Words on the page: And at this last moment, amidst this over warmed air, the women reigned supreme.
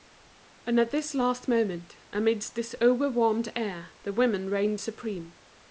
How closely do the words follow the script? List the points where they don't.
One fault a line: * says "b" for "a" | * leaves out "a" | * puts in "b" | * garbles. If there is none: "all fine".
all fine